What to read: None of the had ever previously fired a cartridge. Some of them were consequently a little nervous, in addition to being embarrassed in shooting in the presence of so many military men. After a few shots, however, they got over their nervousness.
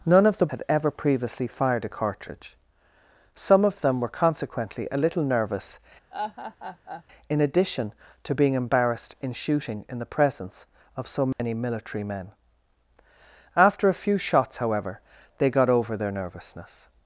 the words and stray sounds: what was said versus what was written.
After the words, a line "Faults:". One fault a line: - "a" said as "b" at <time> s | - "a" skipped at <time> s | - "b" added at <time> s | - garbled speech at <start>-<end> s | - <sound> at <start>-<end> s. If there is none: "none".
None of the had ever previously fired a cartridge. Some of them were consequently a little nervous, in addition to being embarrassed in shooting in the presence of so many military men. After a few shots, however, they got over their nervousness.
Faults:
- laugh at 6.1-7.0 s
- dropout at 11.3-11.4 s